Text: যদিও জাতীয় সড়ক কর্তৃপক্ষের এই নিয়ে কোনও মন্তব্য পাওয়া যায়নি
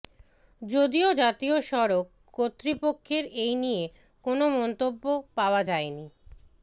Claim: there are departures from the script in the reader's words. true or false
false